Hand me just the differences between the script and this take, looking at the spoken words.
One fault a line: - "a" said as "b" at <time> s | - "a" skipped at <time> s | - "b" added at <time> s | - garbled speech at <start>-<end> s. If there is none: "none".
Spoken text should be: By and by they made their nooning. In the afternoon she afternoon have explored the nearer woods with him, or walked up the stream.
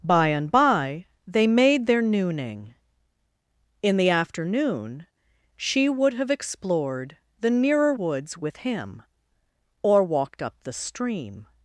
- "afternoon" said as "would" at 5.9 s